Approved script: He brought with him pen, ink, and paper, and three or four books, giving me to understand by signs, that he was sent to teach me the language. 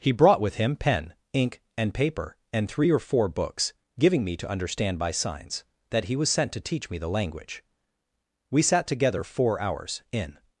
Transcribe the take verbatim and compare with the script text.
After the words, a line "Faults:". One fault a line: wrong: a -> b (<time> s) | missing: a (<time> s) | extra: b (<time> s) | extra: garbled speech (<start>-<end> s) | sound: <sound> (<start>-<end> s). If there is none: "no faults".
He brought with him pen, ink, and paper, and three or four books, giving me to understand by signs, that he was sent to teach me the language. We sat together four hours, in
Faults:
extra: We sat together four hours in (8.5 s)